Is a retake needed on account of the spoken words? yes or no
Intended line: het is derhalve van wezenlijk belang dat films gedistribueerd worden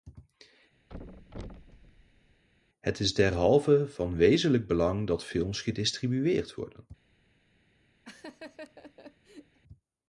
no